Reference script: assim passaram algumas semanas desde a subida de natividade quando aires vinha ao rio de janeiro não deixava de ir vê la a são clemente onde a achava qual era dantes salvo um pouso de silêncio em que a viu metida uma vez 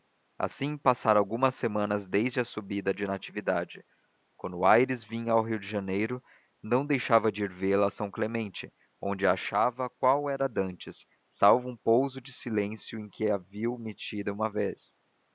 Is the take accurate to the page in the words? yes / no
yes